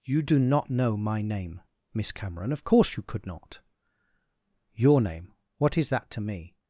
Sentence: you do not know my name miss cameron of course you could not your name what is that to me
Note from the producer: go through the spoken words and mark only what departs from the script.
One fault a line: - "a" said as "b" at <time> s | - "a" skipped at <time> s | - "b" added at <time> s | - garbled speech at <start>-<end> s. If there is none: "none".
none